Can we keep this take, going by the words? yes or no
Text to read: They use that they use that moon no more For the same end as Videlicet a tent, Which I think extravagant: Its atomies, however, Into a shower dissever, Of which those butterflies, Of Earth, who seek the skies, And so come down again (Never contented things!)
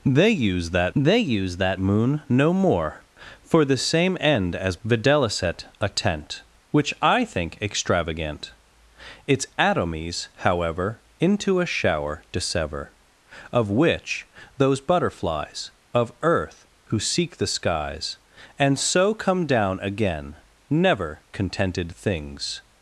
yes